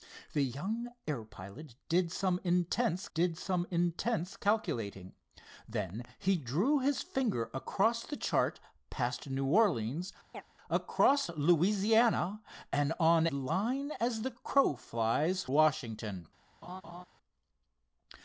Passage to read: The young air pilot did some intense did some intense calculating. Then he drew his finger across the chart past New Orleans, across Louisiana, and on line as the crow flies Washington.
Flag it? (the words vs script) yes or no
no